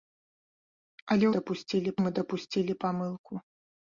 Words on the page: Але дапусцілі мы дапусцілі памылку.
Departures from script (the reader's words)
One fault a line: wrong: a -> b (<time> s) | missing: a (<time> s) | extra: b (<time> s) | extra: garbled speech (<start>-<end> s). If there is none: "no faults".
no faults